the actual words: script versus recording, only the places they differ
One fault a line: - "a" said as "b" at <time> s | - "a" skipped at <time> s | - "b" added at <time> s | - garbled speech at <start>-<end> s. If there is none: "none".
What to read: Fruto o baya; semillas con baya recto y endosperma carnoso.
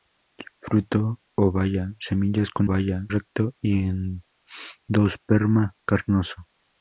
none